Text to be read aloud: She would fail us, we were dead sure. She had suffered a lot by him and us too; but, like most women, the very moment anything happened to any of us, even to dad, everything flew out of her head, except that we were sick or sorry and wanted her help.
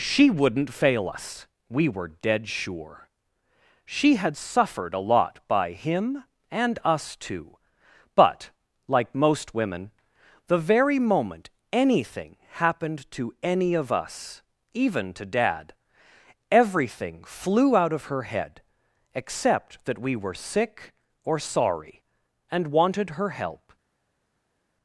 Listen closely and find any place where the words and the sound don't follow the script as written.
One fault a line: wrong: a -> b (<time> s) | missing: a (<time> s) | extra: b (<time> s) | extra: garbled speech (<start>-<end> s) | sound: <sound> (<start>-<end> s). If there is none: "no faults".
wrong: would -> wouldn't (0.3 s)